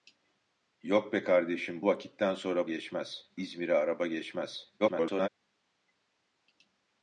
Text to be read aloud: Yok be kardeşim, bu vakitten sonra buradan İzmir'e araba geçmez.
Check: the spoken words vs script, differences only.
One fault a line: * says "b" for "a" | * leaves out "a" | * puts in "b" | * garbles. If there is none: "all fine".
* leaves out "bu"
* says "geçmez" for "buradan"
* garbles